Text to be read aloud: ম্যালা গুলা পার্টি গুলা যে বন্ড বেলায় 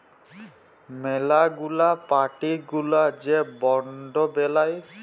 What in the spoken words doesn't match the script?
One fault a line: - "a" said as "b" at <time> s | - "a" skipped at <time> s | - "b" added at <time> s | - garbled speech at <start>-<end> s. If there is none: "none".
none